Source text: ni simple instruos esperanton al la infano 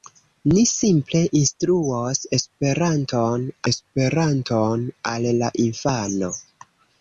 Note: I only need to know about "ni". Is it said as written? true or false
true